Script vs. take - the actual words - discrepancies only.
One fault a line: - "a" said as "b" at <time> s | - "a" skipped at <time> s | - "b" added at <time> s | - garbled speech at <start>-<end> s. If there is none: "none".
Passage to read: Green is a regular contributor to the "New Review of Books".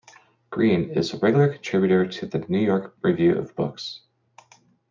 - "York" added at 2.6 s